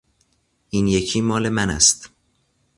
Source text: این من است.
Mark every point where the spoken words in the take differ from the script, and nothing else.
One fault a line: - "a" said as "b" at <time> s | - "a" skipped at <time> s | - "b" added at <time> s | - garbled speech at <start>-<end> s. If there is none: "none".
- "یکی مال" added at 0.9 s